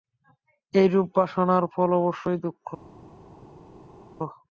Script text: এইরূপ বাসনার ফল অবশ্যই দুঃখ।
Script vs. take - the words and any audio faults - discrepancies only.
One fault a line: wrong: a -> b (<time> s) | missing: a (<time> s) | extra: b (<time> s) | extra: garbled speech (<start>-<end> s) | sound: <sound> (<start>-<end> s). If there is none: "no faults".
no faults